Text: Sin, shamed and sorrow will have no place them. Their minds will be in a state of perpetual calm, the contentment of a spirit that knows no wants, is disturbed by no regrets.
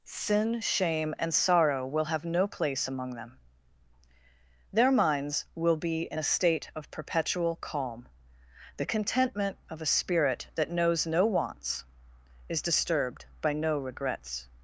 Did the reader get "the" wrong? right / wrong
right